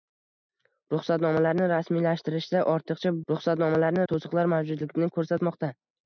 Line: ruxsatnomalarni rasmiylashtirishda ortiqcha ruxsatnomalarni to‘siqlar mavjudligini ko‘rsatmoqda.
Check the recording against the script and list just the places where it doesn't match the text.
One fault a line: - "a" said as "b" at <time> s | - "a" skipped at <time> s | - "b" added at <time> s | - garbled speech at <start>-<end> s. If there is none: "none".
none